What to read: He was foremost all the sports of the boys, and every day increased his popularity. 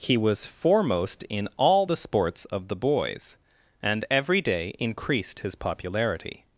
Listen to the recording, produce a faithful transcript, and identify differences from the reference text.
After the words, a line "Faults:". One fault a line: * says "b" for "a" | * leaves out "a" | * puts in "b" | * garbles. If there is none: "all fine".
He was foremost in all the sports of the boys, and every day increased his popularity.
Faults:
* puts in "in"